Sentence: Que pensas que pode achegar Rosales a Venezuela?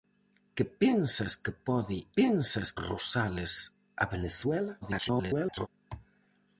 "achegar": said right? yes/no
no